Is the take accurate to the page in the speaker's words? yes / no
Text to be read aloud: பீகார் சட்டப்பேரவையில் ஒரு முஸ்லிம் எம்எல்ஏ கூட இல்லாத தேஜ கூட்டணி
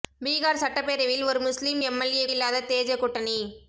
no